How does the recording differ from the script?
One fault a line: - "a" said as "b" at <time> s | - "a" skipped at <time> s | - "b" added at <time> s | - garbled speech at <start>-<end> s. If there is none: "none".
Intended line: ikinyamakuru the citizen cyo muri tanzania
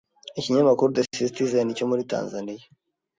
none